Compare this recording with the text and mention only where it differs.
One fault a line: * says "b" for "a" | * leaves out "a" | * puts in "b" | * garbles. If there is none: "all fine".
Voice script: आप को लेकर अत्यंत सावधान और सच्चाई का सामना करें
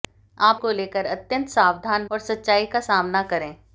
all fine